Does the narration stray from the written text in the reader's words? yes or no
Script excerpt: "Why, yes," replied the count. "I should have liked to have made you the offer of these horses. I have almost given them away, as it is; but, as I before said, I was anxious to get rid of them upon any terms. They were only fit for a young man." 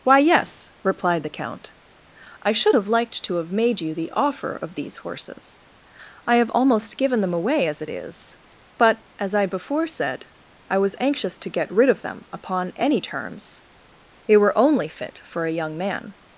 no